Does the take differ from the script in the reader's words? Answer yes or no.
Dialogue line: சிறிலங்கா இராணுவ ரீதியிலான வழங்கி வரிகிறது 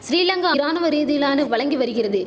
no